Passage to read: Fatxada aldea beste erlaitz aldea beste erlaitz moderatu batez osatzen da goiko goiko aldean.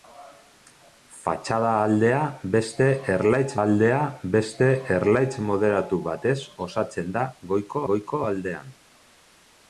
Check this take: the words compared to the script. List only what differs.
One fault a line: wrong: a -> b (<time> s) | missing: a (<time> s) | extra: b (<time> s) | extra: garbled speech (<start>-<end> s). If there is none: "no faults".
no faults